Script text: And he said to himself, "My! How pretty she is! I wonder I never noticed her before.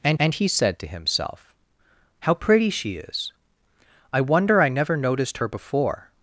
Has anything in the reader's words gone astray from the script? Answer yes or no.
yes